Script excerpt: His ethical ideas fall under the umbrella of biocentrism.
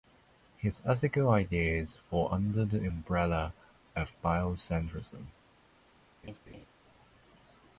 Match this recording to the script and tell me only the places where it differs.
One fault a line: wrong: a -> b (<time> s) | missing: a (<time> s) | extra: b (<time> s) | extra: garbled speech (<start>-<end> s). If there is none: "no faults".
no faults